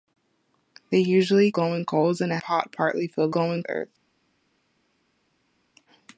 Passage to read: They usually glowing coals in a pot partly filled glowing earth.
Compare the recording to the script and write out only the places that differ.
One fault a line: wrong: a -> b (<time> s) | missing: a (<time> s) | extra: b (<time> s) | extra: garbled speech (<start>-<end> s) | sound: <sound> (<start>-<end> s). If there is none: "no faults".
no faults